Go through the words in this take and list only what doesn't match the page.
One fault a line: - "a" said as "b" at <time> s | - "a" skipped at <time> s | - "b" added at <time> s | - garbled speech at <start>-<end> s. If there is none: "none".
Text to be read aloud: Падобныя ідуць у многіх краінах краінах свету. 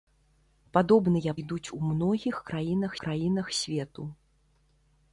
none